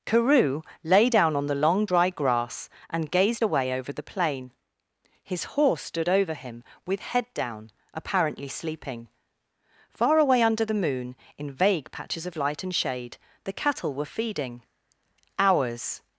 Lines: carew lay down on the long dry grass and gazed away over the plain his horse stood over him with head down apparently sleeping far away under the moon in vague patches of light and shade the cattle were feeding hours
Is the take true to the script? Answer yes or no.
yes